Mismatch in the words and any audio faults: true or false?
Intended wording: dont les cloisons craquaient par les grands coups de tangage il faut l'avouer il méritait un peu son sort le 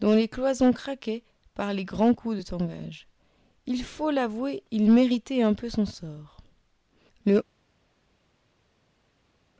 false